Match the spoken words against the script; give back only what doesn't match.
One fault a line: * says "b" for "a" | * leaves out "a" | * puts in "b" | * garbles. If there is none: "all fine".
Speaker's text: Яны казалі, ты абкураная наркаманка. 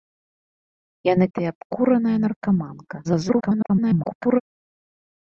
* leaves out "казалі"
* garbles